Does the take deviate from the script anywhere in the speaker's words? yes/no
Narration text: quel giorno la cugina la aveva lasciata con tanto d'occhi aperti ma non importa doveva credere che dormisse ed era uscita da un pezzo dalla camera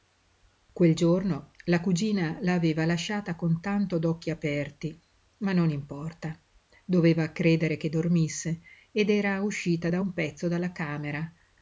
no